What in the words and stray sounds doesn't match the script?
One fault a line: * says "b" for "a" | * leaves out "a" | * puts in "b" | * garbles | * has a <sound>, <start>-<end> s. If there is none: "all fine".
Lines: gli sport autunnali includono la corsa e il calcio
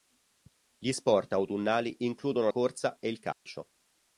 * leaves out "la"
* has a dropout, 3.3-3.5 s